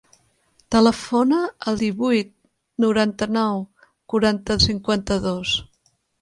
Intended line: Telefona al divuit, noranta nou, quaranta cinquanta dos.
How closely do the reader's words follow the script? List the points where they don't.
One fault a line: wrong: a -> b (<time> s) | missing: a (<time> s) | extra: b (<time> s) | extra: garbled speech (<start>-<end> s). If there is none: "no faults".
no faults